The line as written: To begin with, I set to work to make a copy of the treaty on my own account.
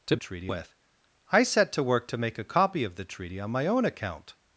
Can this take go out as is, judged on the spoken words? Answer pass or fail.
fail